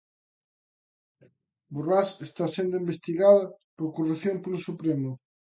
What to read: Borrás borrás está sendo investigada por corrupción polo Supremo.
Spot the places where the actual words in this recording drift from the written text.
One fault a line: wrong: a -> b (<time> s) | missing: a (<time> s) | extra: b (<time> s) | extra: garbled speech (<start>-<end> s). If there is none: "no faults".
missing: borrás (2.1 s)